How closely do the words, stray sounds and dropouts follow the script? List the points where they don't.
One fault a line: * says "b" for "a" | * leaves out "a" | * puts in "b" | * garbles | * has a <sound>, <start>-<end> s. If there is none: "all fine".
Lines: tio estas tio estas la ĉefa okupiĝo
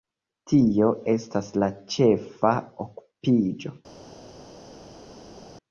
* leaves out "tio estas"